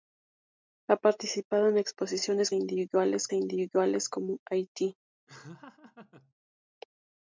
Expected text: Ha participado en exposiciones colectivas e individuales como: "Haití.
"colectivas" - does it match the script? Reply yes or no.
no